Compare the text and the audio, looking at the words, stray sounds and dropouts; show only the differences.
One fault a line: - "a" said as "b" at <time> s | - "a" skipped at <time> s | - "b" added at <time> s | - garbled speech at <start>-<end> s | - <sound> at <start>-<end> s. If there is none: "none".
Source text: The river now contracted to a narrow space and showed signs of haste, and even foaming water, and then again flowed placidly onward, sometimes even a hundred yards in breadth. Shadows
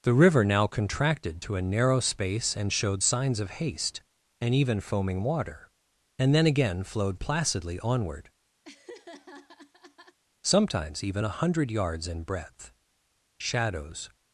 - laugh at 8.6-10.2 s